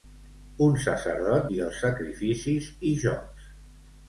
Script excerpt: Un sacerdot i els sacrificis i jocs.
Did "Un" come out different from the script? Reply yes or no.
no